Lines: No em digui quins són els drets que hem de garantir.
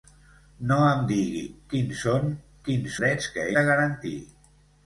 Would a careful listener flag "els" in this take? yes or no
yes